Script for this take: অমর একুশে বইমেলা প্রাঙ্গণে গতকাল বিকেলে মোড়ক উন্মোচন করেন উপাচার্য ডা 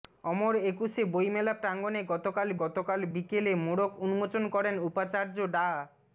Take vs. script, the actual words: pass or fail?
fail